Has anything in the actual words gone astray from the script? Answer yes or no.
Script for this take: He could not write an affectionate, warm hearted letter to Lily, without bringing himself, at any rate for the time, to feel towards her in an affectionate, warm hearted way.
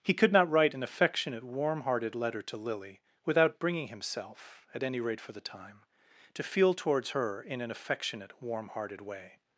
no